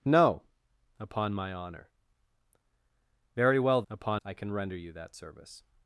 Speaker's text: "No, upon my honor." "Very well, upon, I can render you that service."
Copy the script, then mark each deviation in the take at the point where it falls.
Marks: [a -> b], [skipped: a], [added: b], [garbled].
"No, upon my honor." "Very well, upon, I can render you that service."